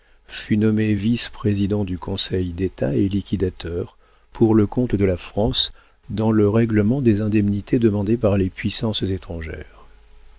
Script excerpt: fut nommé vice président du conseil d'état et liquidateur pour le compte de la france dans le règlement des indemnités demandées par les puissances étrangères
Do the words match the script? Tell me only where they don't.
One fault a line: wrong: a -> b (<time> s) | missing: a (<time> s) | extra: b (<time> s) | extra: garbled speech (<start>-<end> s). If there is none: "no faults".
no faults